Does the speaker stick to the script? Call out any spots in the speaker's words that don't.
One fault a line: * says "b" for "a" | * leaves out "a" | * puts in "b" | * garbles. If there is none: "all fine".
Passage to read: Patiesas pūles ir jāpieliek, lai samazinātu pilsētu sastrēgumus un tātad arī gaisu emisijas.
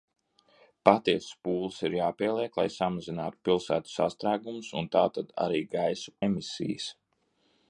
all fine